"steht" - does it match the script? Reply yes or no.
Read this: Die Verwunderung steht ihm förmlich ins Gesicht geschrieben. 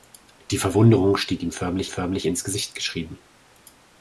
yes